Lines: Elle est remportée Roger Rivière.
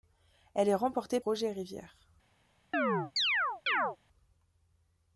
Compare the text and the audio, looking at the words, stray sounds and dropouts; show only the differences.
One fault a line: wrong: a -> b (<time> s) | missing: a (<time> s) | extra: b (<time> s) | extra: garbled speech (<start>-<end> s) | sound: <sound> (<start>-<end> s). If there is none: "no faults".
sound: chirp (2.7-4.0 s)